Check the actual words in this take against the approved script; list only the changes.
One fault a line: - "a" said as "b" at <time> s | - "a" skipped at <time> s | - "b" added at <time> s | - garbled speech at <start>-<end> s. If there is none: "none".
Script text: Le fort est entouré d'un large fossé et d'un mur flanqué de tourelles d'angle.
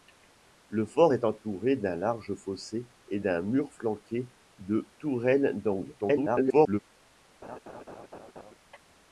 - garbled speech at 6.0-6.8 s